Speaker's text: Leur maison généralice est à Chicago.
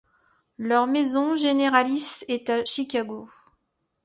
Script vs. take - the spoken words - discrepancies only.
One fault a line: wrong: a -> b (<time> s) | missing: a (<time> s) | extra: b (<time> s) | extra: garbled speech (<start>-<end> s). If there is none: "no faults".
no faults